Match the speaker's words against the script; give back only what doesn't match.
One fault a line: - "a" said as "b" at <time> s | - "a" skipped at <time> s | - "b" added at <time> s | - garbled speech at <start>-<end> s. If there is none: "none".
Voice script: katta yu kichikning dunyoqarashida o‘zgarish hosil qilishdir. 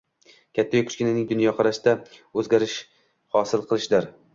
none